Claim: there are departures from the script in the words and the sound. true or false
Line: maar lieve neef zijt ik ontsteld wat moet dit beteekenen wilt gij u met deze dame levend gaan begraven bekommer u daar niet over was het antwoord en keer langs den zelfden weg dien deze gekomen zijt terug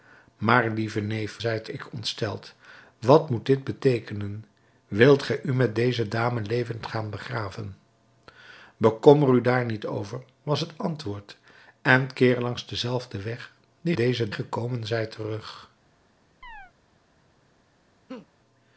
true